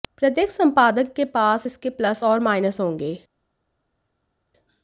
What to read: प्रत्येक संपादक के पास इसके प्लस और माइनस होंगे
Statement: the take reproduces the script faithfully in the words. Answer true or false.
true